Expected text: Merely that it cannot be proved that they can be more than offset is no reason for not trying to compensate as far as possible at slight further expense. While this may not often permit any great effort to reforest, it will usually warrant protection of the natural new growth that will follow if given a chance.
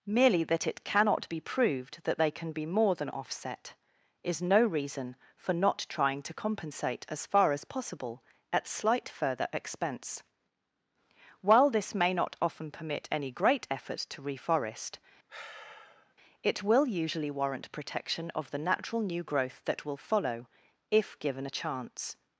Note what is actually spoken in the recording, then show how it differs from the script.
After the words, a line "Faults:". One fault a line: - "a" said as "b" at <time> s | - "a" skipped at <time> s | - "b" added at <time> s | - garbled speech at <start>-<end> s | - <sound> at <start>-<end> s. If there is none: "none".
Merely that it cannot be proved that they can be more than offset is no reason for not trying to compensate as far as possible at slight further expense. While this may not often permit any great effort to reforest, it will usually warrant protection of the natural new growth that will follow if given a chance.
Faults:
- sigh at 15.3-16.1 s